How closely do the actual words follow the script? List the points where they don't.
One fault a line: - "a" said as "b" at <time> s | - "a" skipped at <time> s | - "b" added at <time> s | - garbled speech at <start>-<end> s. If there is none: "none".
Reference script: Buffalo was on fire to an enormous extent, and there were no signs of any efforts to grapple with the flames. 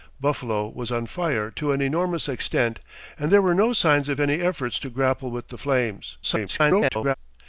- garbled speech at 6.2-7.1 s